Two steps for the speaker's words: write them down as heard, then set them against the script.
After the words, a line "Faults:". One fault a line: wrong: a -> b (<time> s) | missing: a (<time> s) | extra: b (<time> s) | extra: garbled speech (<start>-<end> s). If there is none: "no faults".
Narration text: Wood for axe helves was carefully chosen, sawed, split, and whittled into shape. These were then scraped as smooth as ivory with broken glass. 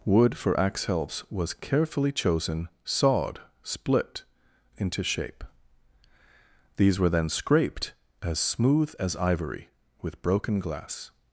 Wood for axe helves was carefully chosen, sawed, split, into shape. These were then scraped as smooth as ivory with broken glass.
Faults:
missing: and whittled (4.2 s)